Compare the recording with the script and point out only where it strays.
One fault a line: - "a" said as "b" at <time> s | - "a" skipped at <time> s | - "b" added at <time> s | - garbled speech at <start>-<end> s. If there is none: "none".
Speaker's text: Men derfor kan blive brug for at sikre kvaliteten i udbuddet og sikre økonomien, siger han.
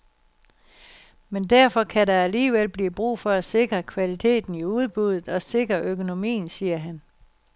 - "der alligevel" added at 2.1 s